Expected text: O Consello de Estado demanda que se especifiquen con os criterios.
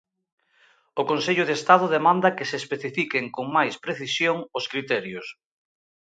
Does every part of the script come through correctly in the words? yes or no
no